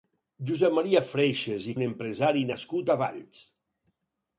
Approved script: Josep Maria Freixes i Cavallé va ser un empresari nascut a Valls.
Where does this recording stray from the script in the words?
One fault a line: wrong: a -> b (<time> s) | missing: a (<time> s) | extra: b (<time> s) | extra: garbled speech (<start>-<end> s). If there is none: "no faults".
missing: Cavallé va ser (1.8 s)